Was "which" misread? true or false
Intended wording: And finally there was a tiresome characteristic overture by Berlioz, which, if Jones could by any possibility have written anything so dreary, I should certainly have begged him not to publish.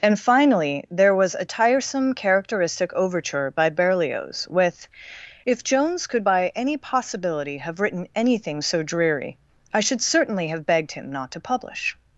true